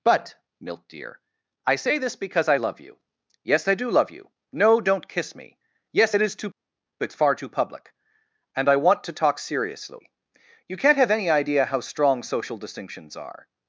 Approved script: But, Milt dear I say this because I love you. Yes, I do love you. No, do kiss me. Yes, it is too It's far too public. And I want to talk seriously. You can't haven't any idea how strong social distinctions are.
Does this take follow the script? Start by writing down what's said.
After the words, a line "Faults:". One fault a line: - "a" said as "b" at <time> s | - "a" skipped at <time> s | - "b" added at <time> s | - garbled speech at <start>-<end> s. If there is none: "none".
But, Milt dear I say this because I love you. Yes, I do love you. No, don't kiss me. Yes, it is too It's far too public. And I want to talk seriously. You can't have any idea how strong social distinctions are.
Faults:
- "do" said as "don't" at 4.8 s
- "haven't" said as "have" at 11.0 s